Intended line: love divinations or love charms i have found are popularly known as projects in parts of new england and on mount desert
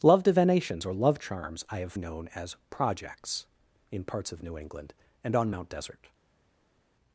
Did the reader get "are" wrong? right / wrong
wrong